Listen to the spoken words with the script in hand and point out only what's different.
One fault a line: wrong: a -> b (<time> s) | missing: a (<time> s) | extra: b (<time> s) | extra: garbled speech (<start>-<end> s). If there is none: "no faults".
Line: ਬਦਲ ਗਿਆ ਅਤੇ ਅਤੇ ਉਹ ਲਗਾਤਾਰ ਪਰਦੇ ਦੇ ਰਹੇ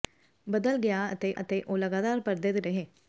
no faults